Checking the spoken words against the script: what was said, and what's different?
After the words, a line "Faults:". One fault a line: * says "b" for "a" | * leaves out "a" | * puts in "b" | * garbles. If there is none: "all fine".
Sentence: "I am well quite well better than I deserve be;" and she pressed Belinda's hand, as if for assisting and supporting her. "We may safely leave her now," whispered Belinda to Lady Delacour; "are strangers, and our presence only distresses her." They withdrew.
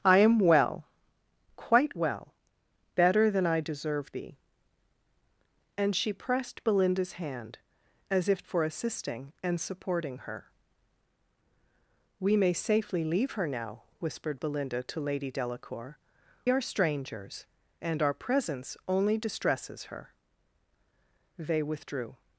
"I am well quite well better than I deserve be;" and she pressed Belinda's hand, as if for assisting and supporting her. "We may safely leave her now," whispered Belinda to Lady Delacour; "are strangers, and our presence only distresses her." They withdrew.
Faults:
all fine